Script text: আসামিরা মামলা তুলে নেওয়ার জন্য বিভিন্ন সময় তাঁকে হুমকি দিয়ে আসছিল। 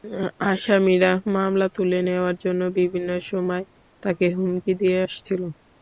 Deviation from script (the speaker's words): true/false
false